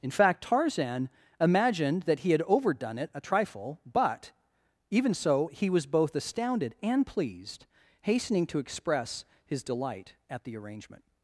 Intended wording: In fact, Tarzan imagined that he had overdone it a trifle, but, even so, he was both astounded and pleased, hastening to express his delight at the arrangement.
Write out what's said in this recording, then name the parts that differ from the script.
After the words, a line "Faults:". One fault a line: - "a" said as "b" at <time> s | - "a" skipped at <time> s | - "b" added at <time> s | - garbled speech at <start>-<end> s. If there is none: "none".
In fact, Tarzan imagined that he had overdone it a trifle, but, even so, he was both astounded and pleased, hastening to express his delight at the arrangement.
Faults:
none